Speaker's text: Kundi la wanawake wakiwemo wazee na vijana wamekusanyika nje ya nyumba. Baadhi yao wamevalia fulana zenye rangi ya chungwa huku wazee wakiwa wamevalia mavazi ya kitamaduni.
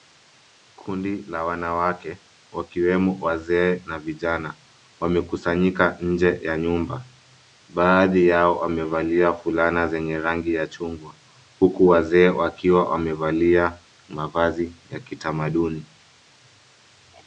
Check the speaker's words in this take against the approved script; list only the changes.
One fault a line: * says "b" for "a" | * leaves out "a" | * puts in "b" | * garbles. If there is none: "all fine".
all fine